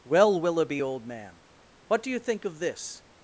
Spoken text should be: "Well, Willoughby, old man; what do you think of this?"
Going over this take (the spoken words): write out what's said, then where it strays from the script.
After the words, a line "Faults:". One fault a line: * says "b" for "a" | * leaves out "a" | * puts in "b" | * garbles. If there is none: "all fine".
"Well, Willoughby, old man; what do you think of this?"
Faults:
all fine